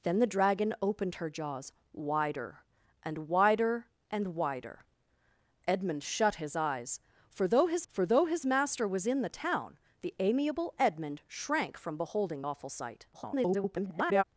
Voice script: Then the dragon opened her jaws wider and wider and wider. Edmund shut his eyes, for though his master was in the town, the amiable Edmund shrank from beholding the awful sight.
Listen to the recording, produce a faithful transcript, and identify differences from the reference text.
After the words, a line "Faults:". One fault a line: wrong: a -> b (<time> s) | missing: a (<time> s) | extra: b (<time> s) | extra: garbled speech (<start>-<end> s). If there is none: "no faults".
Then the dragon opened her jaws wider and wider and wider. Edmund shut his eyes, for though his for though his master was in the town, the amiable Edmund shrank from beholding awful sight. [garbled]
Faults:
extra: for though his (7.9 s)
missing: the (12.4 s)
extra: garbled speech (13.1-14.2 s)